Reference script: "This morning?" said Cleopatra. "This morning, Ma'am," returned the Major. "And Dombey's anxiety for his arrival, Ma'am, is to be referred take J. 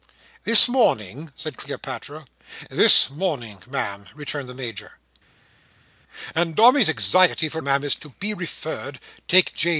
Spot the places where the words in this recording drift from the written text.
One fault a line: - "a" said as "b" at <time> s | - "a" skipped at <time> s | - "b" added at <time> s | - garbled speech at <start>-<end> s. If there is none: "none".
- "his arrival" skipped at 7.6 s